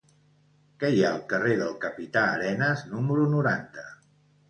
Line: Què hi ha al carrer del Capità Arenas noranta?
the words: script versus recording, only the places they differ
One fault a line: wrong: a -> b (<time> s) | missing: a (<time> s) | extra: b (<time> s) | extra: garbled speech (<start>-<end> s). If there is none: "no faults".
extra: número (3.0 s)